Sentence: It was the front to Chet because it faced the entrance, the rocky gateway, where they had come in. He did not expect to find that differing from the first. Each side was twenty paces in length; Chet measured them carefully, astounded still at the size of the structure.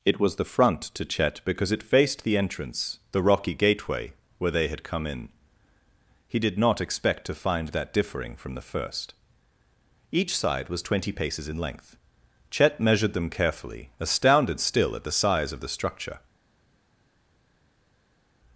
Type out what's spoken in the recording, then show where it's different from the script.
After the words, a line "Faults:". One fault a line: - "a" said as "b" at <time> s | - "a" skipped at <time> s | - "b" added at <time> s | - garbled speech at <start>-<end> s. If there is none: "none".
It was the front to Chet because it faced the entrance, the rocky gateway, where they had come in. He did not expect to find that differing from the first. Each side was twenty paces in length; Chet measured them carefully, astounded still at the size of the structure.
Faults:
none